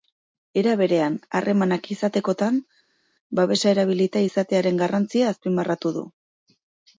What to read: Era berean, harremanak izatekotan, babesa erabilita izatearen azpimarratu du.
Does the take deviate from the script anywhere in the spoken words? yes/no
yes